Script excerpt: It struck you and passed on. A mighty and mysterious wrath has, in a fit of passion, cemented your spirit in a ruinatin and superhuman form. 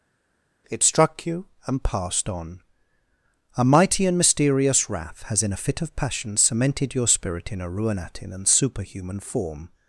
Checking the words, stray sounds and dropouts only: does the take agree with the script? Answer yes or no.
yes